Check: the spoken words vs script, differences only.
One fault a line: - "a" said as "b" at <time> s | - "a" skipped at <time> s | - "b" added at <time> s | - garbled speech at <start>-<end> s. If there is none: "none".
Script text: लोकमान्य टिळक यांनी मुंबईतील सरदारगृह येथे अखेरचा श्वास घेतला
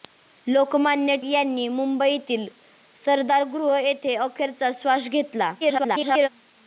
- "टिळक" skipped at 1.1 s
- garbled speech at 5.6-6.3 s